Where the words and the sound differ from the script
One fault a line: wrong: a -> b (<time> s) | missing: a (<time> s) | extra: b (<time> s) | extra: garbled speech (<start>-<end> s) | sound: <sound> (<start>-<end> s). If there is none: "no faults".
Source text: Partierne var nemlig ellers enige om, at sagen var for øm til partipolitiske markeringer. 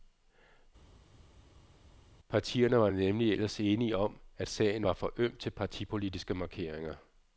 no faults